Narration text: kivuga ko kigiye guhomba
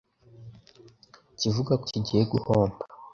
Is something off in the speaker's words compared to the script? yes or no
no